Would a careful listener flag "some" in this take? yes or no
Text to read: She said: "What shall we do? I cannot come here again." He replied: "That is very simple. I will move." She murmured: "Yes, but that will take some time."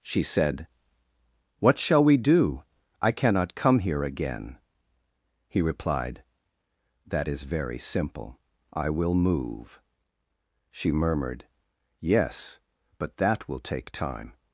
yes